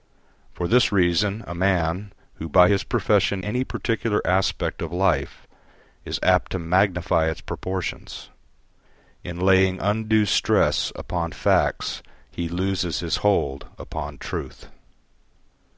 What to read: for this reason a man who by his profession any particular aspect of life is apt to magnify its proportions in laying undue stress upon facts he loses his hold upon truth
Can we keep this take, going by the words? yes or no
yes